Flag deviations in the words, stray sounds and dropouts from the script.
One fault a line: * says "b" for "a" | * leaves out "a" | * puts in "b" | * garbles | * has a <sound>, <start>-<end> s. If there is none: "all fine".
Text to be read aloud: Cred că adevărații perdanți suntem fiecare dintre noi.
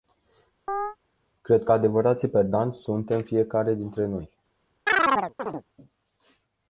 * has a chirp, 0.7-1.0 s
* has a chirp, 4.9-5.6 s